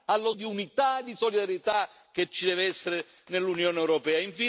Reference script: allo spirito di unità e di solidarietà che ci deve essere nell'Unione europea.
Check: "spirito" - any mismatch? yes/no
yes